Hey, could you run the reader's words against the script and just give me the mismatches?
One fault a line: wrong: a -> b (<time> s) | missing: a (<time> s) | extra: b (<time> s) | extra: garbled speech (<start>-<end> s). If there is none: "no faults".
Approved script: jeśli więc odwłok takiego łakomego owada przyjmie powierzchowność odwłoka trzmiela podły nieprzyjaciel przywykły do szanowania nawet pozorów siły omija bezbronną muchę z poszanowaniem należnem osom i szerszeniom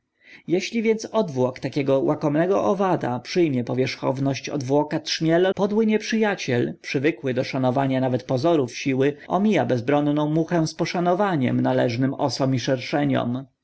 no faults